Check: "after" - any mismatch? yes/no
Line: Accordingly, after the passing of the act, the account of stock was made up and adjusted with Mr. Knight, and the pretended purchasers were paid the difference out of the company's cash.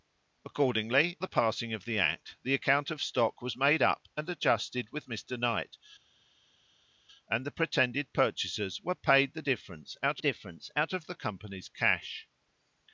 yes